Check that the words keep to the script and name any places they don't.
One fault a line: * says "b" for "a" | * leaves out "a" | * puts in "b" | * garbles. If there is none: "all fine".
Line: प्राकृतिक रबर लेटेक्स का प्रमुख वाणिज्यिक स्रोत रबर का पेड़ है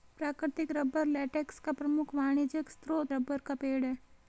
all fine